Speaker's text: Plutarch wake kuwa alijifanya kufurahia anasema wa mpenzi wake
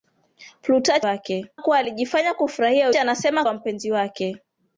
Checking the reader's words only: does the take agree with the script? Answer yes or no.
yes